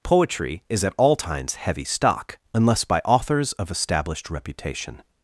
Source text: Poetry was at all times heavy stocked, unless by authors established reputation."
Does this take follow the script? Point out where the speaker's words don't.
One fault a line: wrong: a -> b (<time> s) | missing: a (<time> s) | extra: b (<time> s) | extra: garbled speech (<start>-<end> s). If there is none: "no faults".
wrong: was -> is (0.7 s)
wrong: stocked -> stock (1.9 s)
extra: of (3.5 s)